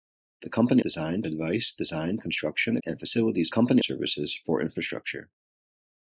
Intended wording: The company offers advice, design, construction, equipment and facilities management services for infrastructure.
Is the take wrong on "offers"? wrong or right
wrong